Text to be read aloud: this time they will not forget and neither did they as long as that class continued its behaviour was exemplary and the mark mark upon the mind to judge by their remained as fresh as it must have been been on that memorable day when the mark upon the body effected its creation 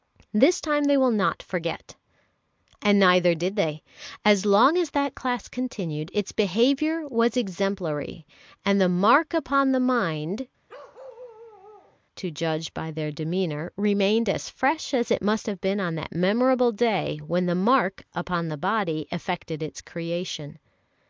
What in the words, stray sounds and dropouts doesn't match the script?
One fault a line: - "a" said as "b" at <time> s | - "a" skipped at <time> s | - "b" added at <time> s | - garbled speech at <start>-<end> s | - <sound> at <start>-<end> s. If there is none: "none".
- "mark" skipped at 9.3 s
- bark at 10.7-12.0 s
- "demeanour" added at 13.1 s
- "been" skipped at 15.8 s